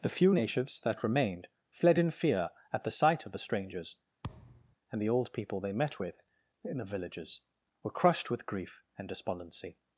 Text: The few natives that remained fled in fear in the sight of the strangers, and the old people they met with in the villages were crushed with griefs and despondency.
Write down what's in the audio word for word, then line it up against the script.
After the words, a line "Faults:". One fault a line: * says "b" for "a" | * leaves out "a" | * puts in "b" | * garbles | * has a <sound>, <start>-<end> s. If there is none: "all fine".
The few natives that remained fled in fear at the sight of the strangers, and the old people they met with in the villages were crushed with grief and despondency.
Faults:
* says "at" for "in"
* has a thud, 4.2-4.8 s
* says "grief" for "griefs"